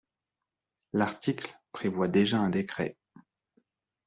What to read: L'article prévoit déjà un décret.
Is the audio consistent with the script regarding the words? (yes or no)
yes